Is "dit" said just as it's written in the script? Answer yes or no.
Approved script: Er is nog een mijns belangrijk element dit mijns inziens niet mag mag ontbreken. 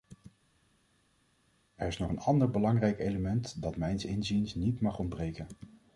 no